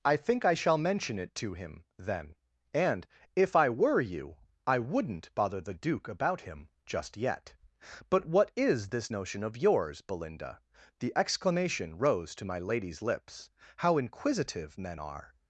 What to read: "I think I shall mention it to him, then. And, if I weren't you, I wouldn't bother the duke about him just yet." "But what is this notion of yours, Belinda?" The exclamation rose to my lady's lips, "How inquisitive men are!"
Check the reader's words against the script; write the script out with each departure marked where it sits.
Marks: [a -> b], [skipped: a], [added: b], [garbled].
"I think I shall mention it to him, then. And, if I [weren't -> were] you, I wouldn't bother the duke about him just yet." "But what is this notion of yours, Belinda?" The exclamation rose to my lady's lips, "How inquisitive men are!"